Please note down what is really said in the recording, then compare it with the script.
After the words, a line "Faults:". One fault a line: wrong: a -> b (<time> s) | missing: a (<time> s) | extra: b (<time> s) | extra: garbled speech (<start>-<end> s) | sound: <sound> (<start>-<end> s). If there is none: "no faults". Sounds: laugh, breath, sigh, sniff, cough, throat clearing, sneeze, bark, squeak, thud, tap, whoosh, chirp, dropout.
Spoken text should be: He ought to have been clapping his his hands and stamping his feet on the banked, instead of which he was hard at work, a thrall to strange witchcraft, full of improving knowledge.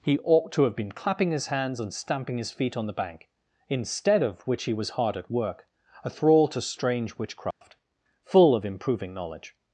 He ought to have been clapping his hands and stamping his feet on the bank, instead of which he was hard at work, a thrall to strange witchcraft, full of improving knowledge.
Faults:
missing: his (1.5 s)
wrong: banked -> bank (3.0 s)
sound: dropout (7.5-7.6 s)